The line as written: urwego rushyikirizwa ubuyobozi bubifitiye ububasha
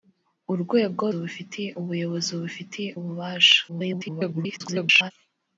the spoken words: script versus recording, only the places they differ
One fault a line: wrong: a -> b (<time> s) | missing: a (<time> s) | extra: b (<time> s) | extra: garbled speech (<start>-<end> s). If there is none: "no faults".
wrong: rushyikirizwa -> bubifitiye (1.1 s)
extra: garbled speech (3.7-5.1 s)